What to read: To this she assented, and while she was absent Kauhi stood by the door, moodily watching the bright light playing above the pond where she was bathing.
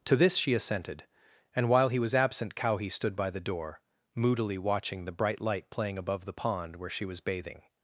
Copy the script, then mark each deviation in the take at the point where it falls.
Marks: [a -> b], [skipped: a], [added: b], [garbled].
To this she assented, and while [she -> he] was absent Kauhi stood by the door, moodily watching the bright light playing above the pond where she was bathing.